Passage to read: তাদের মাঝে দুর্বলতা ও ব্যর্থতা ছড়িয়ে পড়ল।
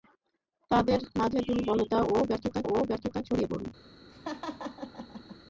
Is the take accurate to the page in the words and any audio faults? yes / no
no